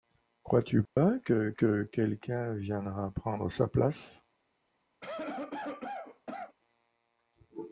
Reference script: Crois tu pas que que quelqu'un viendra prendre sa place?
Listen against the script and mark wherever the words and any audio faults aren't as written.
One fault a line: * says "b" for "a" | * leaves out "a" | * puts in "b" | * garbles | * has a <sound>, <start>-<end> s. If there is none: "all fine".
* has a dropout, 0.9-1.0 s
* has a cough, 5.0-6.6 s